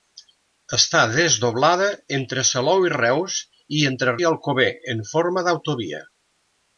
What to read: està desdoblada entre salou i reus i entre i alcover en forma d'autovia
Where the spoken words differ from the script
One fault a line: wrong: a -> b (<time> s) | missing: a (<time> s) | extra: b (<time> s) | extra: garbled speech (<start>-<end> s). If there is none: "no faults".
no faults